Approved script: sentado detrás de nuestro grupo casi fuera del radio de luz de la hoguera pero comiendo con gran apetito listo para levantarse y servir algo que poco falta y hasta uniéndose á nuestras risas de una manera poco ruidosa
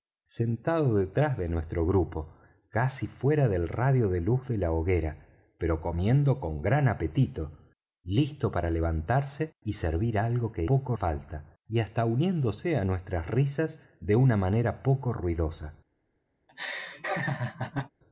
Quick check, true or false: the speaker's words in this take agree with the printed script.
true